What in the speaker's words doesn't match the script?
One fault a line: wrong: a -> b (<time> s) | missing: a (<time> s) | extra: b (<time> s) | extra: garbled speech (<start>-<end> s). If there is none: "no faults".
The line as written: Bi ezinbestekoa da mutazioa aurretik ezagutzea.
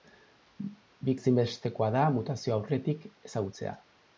no faults